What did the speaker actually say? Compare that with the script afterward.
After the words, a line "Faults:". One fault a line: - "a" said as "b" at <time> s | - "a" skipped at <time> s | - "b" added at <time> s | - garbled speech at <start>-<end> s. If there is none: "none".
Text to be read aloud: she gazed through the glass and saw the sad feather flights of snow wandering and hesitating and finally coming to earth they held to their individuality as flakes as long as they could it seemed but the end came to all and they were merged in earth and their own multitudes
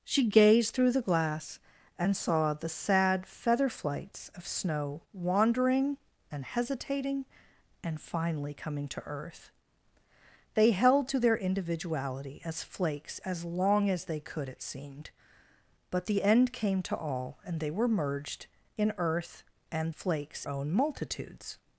she gazed through the glass and saw the sad feather flights of snow wandering and hesitating and finally coming to earth they held to their individuality as flakes as long as they could it seemed but the end came to all and they were merged in earth and flakes own multitudes
Faults:
- "their" said as "flakes" at 19.9 s